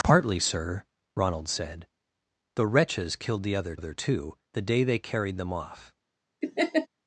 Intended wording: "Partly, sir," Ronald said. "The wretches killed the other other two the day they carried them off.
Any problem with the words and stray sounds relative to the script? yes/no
yes